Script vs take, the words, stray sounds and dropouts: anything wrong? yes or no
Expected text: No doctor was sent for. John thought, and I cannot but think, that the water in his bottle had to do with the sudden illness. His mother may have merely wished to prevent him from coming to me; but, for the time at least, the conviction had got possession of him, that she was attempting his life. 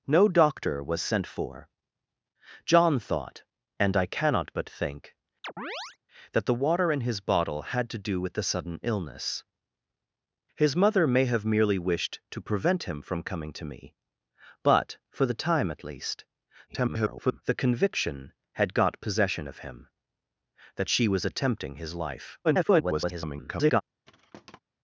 yes